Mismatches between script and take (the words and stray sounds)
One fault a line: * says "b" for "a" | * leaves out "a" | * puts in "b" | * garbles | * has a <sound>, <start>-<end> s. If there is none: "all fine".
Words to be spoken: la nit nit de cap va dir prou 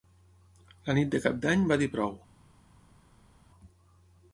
* leaves out "nit"
* puts in "d'any"